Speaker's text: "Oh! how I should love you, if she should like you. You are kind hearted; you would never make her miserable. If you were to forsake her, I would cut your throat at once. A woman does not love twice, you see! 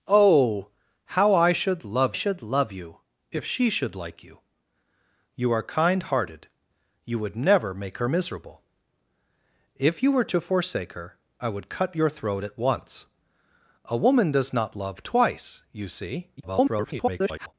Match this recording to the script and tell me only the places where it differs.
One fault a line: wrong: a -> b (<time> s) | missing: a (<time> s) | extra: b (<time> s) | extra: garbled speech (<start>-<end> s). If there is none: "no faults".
extra: should love (2.1 s)
extra: garbled speech (16.4-17.5 s)